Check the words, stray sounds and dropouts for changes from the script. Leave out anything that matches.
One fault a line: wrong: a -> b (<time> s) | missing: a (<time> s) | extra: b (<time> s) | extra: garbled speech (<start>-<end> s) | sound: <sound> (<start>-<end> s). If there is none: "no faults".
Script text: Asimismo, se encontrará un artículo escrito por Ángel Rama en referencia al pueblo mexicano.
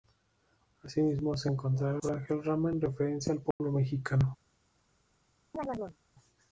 missing: un artículo escrito (2.0 s)
sound: dropout (3.5-3.6 s)
sound: chirp (5.5-6.0 s)